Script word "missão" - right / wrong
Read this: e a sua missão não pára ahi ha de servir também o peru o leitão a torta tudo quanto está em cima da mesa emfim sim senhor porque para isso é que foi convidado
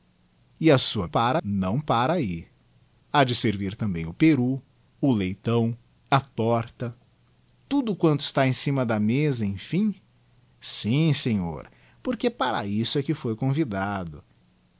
wrong